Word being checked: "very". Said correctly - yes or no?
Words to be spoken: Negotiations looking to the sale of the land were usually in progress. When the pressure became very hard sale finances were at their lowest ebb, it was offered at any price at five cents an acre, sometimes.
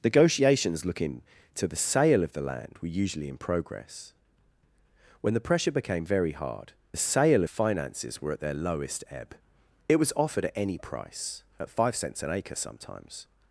yes